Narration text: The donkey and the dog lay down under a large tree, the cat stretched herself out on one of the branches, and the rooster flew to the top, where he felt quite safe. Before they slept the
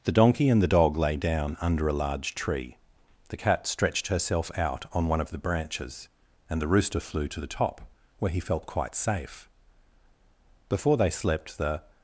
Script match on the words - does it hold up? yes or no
yes